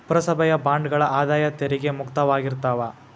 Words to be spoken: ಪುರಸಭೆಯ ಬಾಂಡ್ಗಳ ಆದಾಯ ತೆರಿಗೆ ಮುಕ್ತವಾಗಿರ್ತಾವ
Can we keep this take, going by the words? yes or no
yes